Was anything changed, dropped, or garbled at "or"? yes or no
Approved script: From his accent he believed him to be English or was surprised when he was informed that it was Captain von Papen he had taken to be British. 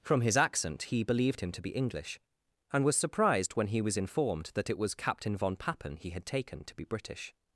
yes